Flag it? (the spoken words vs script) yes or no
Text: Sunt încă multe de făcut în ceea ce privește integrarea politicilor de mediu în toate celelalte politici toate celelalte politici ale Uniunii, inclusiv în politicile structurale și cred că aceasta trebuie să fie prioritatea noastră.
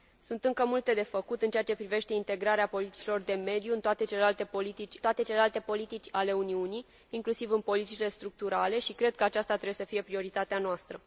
no